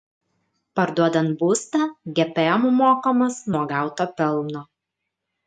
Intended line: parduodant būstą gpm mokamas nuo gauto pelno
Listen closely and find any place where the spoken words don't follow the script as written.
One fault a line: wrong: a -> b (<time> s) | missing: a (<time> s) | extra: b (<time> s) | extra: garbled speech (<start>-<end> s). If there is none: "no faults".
no faults